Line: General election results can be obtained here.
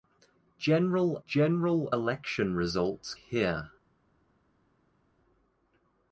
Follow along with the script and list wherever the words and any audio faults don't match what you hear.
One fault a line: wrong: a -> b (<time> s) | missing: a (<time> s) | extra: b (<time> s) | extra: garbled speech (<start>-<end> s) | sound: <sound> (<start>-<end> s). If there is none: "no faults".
extra: general (1.2 s)
missing: can be obtained (3.2 s)